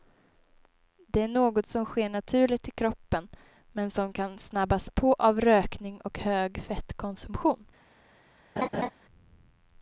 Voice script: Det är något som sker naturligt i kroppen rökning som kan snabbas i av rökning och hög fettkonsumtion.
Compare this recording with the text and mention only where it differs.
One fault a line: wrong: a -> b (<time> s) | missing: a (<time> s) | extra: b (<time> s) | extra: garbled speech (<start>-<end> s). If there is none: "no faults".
wrong: rökning -> men (3.7 s)
wrong: i -> på (4.9 s)